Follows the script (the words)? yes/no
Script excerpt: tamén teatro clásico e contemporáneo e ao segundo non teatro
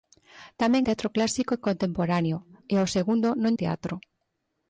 yes